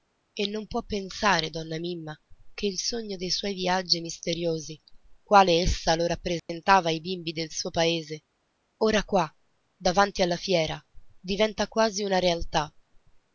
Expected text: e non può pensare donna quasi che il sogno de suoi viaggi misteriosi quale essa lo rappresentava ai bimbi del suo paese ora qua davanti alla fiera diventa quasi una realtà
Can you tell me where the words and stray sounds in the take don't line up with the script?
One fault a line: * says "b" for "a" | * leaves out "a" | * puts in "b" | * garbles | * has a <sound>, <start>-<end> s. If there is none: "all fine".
* says "mimma" for "quasi"
* has a dropout, 6.4-6.5 s